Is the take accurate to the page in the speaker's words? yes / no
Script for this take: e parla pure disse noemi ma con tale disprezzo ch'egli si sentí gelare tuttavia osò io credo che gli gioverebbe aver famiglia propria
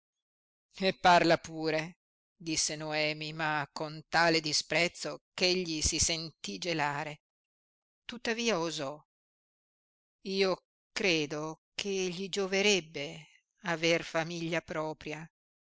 yes